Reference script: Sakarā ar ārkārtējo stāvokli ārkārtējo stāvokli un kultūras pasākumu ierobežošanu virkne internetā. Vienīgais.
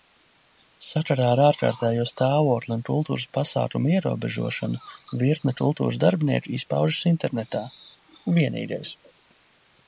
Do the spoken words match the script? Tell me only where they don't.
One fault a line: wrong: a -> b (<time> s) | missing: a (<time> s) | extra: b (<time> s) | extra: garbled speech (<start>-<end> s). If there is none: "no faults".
missing: ārkārtējo stāvokli (2.7 s)
extra: kultūras darbinieku izpaužas (5.6 s)